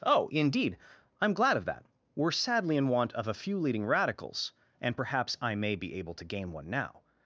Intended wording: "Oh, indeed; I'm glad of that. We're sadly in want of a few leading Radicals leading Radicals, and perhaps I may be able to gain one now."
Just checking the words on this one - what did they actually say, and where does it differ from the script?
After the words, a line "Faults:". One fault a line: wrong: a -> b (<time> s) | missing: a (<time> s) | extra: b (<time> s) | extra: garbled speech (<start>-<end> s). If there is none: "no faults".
"Oh, indeed; I'm glad of that. We're sadly in want of a few leading Radicals, and perhaps I may be able to gain one now."
Faults:
missing: leading Radicals (4.5 s)